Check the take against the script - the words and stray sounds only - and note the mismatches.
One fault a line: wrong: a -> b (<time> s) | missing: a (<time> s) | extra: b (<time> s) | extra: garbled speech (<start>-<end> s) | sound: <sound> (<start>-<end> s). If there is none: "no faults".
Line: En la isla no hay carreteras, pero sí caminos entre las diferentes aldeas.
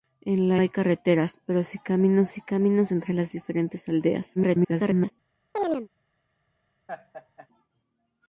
missing: isla no (0.6 s)
extra: sí caminos (2.3 s)
extra: garbled speech (4.3-5.1 s)
sound: chirp (5.5-5.9 s)
sound: laugh (6.9-7.5 s)